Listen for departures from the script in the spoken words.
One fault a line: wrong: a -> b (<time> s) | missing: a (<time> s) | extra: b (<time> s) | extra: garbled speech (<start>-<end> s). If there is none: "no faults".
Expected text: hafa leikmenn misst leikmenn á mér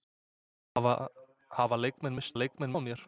no faults